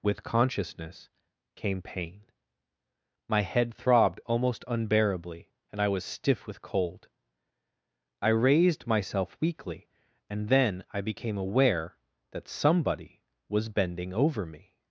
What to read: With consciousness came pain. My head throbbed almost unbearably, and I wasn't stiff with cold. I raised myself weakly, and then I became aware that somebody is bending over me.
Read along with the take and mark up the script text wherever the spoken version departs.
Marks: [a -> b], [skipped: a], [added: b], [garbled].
With consciousness came pain. My head throbbed almost unbearably, and I [wasn't -> was] stiff with cold. I raised myself weakly, and then I became aware that somebody [is -> was] bending over me.